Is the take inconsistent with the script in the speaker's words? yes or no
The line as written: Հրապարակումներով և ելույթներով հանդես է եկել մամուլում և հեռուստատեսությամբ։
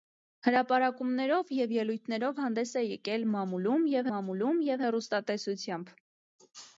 yes